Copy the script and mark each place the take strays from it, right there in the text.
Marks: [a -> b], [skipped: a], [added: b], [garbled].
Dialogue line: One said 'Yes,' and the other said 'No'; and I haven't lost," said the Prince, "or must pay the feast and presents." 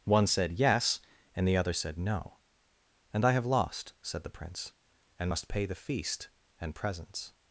One said 'Yes,' and the other said 'No'; and I [haven't -> have] lost," said the Prince, ["or -> and] must pay the feast and presents."